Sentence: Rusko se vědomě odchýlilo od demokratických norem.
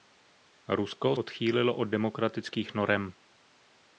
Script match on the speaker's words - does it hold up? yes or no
no